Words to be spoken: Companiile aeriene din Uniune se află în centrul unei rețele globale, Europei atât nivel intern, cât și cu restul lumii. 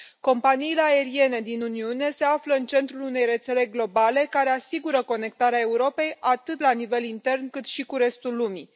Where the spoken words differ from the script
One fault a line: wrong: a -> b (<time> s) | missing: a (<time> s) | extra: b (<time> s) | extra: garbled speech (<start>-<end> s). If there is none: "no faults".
extra: care asigură conectarea (4.3 s)
extra: la (6.6 s)